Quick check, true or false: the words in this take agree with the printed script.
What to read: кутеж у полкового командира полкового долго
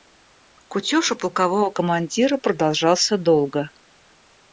false